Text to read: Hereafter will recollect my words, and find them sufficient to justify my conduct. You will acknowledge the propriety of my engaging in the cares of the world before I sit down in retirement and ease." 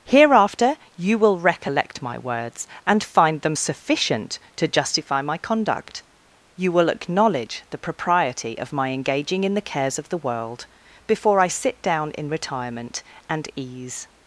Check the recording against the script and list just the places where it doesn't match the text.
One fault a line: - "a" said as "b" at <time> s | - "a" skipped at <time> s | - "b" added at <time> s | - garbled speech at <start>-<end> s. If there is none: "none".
- "you" added at 1.0 s